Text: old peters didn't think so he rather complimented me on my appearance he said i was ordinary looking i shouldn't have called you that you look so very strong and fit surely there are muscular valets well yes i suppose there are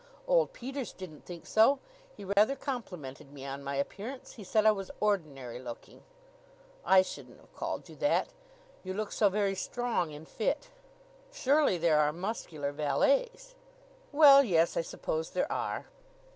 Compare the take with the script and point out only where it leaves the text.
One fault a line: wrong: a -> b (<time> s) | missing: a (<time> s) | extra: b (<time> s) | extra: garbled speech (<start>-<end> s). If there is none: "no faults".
no faults